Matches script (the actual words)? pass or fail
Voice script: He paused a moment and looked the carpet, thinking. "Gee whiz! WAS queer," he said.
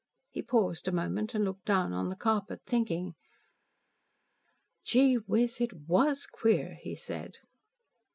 fail